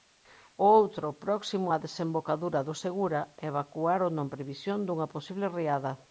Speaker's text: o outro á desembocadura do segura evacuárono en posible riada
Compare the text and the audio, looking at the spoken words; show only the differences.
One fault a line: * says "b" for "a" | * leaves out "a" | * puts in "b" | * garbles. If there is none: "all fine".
* puts in "próximo"
* puts in "previsión dunha"